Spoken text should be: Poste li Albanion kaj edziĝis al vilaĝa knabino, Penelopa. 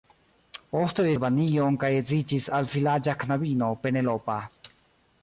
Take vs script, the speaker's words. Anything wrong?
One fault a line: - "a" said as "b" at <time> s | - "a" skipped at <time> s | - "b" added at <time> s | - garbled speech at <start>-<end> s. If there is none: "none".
none